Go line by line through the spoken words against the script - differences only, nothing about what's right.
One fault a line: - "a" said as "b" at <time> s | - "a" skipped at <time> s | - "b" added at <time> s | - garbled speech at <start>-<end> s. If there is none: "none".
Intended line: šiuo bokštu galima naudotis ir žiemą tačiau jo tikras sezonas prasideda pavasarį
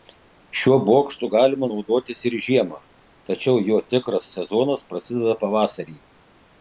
none